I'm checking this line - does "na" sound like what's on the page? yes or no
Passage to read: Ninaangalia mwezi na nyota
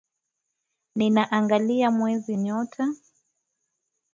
no